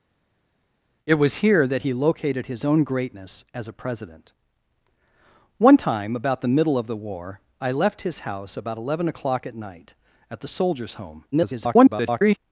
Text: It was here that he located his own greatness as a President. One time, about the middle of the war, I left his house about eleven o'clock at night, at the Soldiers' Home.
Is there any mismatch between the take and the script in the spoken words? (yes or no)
yes